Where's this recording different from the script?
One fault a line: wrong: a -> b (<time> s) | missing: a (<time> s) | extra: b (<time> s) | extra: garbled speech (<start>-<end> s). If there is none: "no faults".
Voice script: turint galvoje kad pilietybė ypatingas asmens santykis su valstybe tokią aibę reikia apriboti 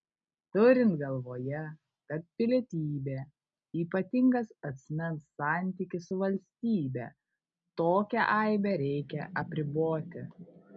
no faults